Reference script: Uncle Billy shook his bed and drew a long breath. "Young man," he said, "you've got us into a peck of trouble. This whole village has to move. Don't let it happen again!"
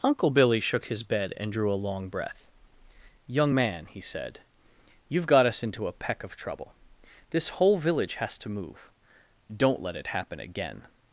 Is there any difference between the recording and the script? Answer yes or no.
no